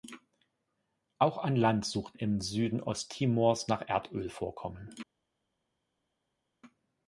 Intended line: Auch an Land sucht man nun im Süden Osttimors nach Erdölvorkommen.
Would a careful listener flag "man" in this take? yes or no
yes